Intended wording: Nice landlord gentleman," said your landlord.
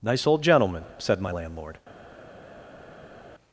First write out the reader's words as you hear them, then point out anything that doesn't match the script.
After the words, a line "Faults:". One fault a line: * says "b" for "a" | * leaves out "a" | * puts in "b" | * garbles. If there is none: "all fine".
Nice old gentleman," said my landlord.
Faults:
* says "old" for "landlord"
* says "my" for "your"